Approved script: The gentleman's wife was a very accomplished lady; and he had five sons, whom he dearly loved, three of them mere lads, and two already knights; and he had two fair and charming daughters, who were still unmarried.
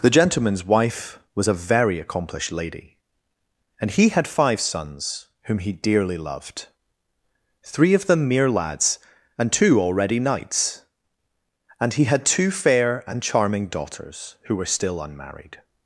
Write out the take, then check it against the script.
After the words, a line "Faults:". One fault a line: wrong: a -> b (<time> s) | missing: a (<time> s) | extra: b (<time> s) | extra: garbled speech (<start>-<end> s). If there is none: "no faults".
The gentleman's wife was a very accomplished lady; and he had five sons, whom he dearly loved, three of them mere lads, and two already knights; and he had two fair and charming daughters, who were still unmarried.
Faults:
no faults